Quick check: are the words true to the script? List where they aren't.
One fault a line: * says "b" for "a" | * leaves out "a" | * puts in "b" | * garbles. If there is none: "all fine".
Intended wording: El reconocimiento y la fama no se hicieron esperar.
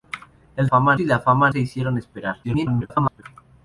* says "fama" for "reconocimiento"
* leaves out "no"
* garbles